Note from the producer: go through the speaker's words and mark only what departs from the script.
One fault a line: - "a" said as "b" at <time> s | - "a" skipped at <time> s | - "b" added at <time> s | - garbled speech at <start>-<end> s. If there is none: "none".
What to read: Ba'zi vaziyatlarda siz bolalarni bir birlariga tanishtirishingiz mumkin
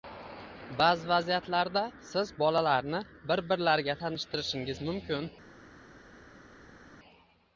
none